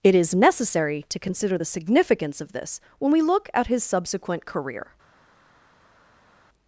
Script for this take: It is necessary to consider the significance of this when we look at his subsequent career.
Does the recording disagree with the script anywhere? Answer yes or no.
no